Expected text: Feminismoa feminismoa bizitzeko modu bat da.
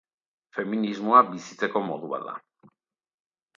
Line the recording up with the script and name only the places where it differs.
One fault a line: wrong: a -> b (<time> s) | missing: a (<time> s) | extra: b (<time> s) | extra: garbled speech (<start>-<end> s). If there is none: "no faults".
missing: feminismoa (1.2 s)